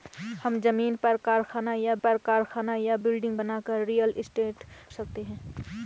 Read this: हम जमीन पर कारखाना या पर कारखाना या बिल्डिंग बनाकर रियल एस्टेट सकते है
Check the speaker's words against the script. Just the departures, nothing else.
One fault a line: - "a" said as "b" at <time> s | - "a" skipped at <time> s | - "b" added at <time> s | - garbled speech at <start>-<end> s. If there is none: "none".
none